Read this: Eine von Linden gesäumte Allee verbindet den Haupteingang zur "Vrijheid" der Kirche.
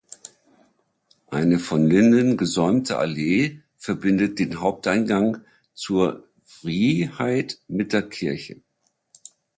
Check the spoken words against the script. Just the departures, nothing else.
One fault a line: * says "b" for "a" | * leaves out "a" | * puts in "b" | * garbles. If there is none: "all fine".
* puts in "mit"